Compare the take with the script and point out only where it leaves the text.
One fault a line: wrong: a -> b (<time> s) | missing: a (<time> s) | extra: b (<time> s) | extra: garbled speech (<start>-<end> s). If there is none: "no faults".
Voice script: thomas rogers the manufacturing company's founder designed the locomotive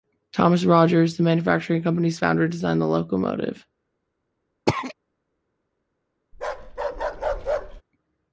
no faults